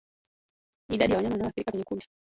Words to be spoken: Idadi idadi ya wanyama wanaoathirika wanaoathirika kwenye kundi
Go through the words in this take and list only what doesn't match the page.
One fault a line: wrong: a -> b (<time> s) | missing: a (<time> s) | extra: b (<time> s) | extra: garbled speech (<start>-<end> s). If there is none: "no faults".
missing: idadi (1.1 s)
missing: wanaoathirika (1.7 s)